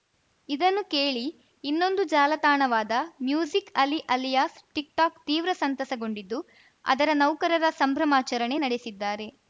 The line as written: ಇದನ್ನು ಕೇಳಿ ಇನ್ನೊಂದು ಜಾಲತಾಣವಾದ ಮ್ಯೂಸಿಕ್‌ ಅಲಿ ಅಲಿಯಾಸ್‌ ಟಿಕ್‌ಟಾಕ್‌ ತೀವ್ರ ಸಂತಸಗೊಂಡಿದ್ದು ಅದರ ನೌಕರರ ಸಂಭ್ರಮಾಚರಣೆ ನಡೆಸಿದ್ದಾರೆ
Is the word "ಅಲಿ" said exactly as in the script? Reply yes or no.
yes